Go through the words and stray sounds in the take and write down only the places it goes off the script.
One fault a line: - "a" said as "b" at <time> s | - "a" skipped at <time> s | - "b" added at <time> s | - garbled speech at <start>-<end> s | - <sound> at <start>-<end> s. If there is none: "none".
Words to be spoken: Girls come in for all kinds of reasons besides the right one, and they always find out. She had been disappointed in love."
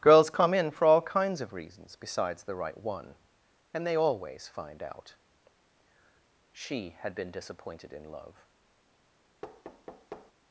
- thud at 9.4-10.3 s